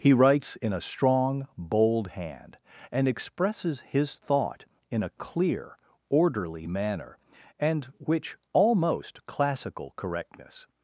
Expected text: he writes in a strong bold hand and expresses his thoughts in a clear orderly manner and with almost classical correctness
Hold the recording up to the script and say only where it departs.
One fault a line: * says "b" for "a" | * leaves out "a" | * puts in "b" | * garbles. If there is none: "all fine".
* says "thought" for "thoughts"
* says "which" for "with"